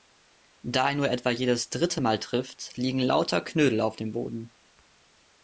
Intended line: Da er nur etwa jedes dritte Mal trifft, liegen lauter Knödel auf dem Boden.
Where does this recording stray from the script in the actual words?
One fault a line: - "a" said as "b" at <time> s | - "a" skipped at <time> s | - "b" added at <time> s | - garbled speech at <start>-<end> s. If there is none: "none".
none